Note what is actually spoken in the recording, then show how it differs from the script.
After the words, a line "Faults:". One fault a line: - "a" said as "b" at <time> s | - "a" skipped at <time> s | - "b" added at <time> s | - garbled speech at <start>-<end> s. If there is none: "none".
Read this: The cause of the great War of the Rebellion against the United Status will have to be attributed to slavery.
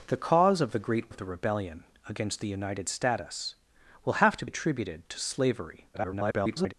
The cause of the great Of the Rebellion against the United Status will have to attributed to slavery. [garbled]
Faults:
- "War" skipped at 1.1 s
- "be" skipped at 4.5 s
- garbled speech at 5.9-6.7 s